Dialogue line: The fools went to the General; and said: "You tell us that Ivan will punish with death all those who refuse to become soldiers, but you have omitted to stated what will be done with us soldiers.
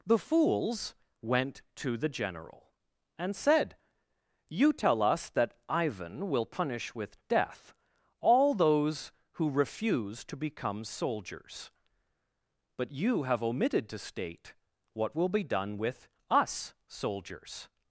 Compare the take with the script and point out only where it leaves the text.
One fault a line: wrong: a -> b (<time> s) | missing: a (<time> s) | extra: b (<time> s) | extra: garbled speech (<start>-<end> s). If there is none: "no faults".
wrong: stated -> state (14.0 s)